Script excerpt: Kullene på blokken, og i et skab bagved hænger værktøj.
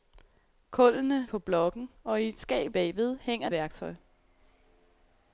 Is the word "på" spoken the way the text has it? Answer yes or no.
yes